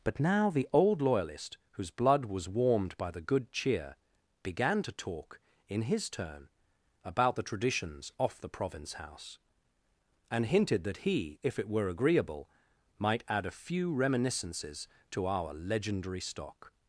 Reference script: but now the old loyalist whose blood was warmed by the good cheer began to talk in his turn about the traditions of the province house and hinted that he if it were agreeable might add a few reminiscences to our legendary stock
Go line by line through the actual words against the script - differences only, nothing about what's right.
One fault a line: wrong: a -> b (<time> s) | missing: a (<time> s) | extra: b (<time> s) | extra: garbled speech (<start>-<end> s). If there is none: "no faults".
wrong: of -> off (8.2 s)